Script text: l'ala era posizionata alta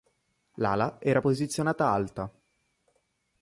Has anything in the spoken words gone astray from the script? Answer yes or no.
no